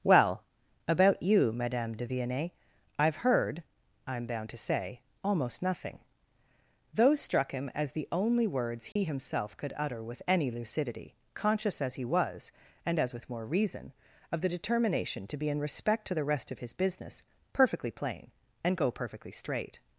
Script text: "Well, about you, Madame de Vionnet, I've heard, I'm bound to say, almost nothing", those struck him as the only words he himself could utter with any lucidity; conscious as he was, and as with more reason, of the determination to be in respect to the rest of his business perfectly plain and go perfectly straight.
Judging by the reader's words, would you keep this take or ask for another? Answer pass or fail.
pass